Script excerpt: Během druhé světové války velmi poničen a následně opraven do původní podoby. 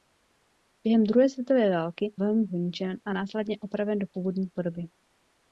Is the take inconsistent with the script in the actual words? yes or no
no